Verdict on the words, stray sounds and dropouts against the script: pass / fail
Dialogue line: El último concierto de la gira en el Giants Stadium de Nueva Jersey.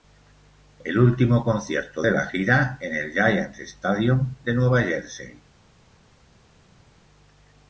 pass